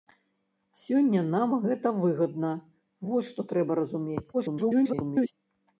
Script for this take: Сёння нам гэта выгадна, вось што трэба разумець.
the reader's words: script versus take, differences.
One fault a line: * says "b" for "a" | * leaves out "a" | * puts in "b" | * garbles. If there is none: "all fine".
* garbles